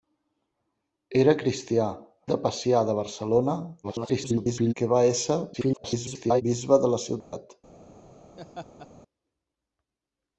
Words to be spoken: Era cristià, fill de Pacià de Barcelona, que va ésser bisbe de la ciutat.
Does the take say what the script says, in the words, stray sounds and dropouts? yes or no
no